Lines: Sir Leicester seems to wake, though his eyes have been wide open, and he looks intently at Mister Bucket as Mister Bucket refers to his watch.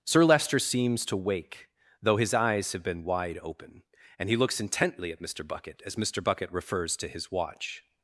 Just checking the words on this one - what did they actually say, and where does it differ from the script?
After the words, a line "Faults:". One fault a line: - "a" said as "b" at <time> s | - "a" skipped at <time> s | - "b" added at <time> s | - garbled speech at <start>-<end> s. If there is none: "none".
Sir Leicester seems to wake, though his eyes have been wide open, and he looks intently at Mister Bucket as Mister Bucket refers to his watch.
Faults:
none